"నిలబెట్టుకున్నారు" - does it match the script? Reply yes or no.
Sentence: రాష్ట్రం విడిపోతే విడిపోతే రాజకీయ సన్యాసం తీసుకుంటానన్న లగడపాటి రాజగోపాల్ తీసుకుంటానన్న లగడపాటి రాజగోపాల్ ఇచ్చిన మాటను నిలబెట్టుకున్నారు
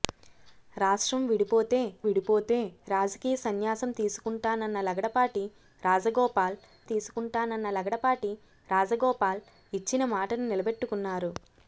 yes